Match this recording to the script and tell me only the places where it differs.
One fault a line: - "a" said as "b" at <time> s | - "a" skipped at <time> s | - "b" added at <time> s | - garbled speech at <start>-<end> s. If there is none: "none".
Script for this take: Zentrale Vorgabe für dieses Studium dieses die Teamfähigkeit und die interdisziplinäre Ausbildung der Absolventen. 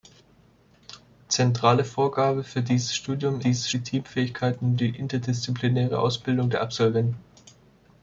none